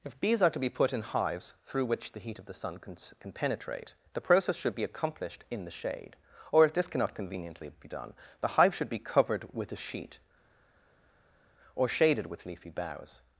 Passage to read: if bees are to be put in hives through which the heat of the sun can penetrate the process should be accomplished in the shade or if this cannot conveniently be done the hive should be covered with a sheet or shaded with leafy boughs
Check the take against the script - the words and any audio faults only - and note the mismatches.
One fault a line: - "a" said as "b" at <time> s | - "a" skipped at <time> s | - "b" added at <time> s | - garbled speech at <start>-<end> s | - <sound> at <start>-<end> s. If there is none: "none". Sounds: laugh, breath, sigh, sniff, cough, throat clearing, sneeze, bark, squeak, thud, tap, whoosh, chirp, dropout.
- "can" added at 3.2 s